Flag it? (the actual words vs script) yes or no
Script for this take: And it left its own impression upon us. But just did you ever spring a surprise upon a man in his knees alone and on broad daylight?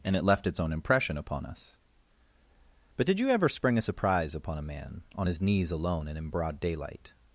yes